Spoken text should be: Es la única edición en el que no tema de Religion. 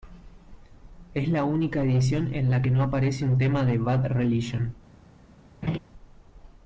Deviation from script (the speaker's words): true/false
true